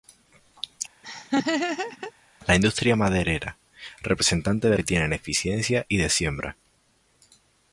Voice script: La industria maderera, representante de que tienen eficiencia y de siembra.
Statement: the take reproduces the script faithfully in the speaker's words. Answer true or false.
true